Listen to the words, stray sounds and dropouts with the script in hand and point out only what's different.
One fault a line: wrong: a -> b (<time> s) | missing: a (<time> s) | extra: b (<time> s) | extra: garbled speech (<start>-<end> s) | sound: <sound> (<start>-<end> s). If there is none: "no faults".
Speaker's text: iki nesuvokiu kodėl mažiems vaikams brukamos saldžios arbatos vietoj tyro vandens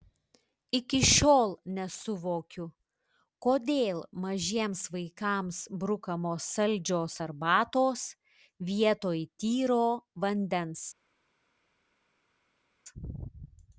extra: šiol (1.1 s)